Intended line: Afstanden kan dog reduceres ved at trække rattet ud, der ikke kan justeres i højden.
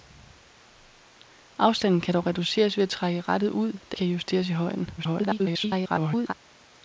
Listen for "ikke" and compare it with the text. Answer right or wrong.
wrong